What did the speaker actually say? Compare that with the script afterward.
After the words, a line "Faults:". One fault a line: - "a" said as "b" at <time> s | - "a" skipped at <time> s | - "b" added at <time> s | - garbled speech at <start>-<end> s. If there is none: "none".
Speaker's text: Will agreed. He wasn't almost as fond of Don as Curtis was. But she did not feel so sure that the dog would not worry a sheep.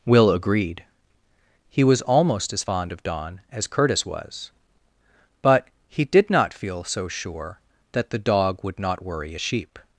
Will agreed. He was almost as fond of Don as Curtis was. But he did not feel so sure that the dog would not worry a sheep.
Faults:
- "wasn't" said as "was" at 1.8 s
- "she" said as "he" at 5.9 s